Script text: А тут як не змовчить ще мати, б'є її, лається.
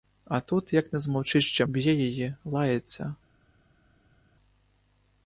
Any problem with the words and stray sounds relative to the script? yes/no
yes